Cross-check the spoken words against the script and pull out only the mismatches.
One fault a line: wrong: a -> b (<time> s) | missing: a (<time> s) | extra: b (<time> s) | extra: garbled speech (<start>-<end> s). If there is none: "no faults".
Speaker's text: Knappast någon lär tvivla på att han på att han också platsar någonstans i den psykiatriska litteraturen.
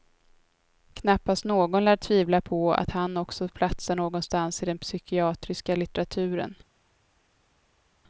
missing: på att han (3.2 s)